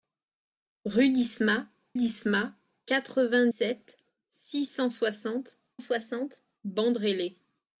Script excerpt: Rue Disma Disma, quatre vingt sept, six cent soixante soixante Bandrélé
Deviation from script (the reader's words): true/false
false